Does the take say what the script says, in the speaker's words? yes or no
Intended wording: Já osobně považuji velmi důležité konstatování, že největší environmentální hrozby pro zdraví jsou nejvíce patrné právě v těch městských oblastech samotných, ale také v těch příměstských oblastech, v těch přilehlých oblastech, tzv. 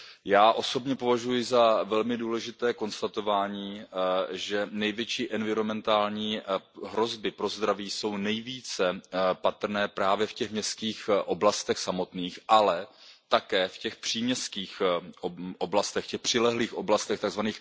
no